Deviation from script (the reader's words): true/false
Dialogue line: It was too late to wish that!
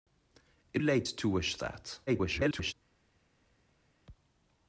true